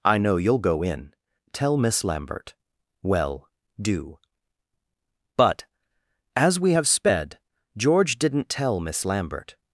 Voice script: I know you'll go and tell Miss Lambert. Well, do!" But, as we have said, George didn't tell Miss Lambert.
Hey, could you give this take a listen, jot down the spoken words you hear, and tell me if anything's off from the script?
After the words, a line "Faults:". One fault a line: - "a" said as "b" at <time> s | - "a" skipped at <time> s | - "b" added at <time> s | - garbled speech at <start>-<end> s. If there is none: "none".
I know you'll go in tell Miss Lambert. Well, do!" But, as we have sped, George didn't tell Miss Lambert.
Faults:
- "and" said as "in" at 0.8 s
- "said" said as "sped" at 6.9 s